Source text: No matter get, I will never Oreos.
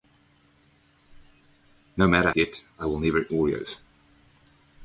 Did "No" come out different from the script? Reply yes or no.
no